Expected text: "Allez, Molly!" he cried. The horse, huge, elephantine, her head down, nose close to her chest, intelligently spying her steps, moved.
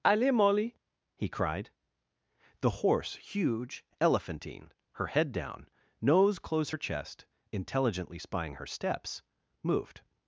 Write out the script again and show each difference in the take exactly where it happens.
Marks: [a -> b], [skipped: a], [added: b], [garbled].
"Allez, Molly!" he cried. The horse, huge, elephantine, her head down, nose close [skipped: to] her chest, intelligently spying her steps, moved.